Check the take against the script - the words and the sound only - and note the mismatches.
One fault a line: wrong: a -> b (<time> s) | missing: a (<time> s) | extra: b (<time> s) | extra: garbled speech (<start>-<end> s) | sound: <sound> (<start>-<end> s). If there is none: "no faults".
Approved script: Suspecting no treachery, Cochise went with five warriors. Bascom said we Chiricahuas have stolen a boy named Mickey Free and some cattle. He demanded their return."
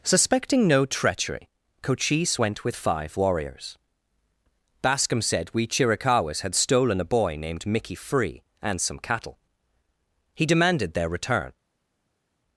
wrong: have -> had (6.4 s)